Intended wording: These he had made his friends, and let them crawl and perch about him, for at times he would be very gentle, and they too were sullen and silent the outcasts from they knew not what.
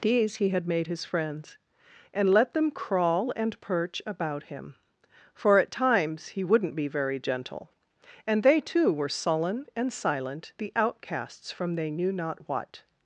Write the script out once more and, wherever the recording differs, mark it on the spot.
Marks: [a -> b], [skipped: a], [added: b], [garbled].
These he had made his friends, and let them crawl and perch about him, for at times he [would -> wouldn't] be very gentle, and they too were sullen and silent the outcasts from they knew not what.